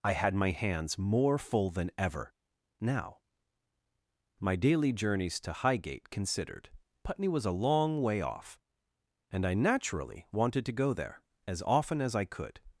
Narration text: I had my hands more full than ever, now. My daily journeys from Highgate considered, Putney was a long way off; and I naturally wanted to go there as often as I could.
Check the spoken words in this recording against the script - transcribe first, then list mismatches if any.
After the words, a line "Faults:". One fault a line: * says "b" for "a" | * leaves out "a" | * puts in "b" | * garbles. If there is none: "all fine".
I had my hands more full than ever, now. My daily journeys to Highgate considered, Putney was a long way off; and I naturally wanted to go there as often as I could.
Faults:
* says "to" for "from"